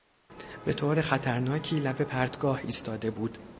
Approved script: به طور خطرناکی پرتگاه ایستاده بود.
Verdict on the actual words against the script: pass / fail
fail